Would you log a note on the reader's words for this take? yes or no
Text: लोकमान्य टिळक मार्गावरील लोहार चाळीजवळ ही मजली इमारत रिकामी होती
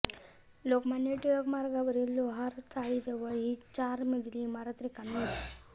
yes